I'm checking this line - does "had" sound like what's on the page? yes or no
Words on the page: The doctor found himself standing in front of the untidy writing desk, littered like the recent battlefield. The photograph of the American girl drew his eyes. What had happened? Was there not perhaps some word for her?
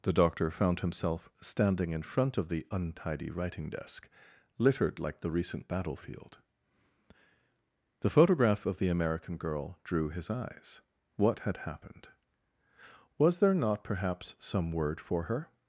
yes